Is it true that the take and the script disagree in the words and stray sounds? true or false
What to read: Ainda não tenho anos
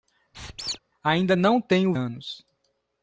true